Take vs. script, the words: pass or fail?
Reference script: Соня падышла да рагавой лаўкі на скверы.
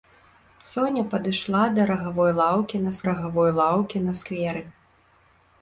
fail